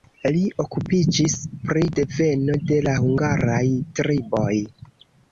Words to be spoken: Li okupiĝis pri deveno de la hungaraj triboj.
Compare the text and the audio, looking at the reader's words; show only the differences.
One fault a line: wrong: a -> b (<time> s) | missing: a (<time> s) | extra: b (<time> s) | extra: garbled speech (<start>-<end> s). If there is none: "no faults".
no faults